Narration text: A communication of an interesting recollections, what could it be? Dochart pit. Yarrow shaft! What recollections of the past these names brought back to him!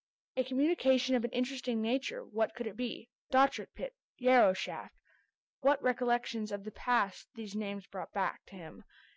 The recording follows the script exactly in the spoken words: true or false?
false